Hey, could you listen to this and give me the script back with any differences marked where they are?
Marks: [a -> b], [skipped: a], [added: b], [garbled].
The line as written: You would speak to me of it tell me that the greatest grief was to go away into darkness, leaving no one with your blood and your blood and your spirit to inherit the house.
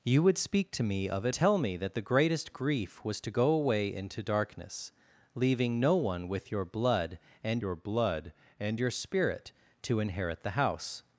You would speak to me of it tell me that the greatest grief was to go away into darkness, leaving no one with your blood and your blood and your spirit to inherit the house.